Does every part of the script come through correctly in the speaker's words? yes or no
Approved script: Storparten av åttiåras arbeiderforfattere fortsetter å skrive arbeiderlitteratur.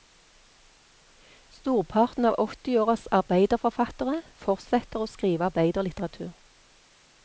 yes